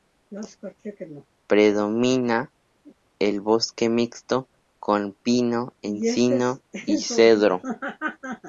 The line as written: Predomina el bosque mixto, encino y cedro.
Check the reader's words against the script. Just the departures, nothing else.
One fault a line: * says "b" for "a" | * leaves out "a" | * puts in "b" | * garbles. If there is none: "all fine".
* puts in "con pino"